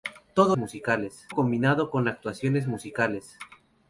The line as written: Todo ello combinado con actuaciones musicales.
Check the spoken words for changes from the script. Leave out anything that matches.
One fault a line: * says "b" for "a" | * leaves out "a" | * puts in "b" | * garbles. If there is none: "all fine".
* says "musicales" for "ello"